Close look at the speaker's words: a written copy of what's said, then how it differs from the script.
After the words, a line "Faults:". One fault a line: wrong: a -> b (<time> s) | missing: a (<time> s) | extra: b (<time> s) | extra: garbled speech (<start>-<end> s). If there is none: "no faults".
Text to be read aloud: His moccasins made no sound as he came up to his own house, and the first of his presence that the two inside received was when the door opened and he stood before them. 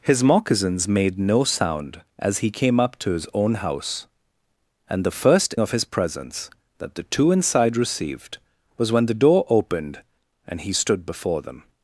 His moccasins made no sound as he came up to his own house, and the first of his presence that the two inside received was when the door opened and he stood before them.
Faults:
no faults